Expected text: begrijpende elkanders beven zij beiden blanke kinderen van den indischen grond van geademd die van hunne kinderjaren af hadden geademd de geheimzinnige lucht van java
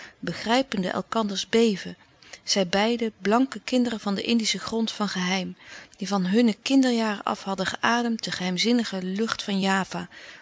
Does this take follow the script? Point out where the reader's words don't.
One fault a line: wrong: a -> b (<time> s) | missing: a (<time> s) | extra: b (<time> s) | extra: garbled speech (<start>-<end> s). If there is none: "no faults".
wrong: geademd -> geheim (5.1 s)